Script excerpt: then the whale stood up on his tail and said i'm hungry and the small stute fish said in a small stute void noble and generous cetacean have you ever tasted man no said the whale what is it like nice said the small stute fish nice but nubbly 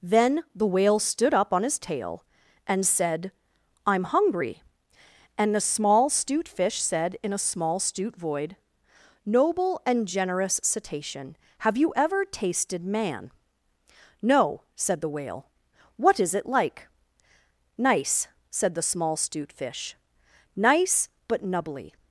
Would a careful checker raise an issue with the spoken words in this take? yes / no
no